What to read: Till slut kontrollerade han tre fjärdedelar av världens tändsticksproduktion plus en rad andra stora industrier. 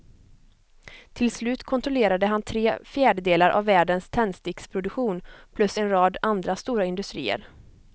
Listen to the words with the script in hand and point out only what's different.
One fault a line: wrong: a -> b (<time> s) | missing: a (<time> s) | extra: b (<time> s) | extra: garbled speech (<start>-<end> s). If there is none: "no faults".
no faults